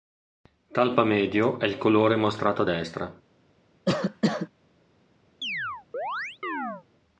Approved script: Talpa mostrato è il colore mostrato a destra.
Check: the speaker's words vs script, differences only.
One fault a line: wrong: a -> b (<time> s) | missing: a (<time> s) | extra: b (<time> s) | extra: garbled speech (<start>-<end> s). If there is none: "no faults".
wrong: mostrato -> medio (1.0 s)